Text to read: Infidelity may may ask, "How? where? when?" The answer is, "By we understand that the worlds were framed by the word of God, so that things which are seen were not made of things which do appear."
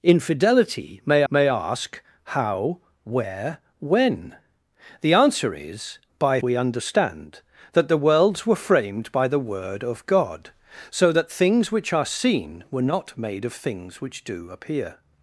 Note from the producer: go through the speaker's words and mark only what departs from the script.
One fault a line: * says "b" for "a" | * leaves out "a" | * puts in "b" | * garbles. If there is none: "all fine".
all fine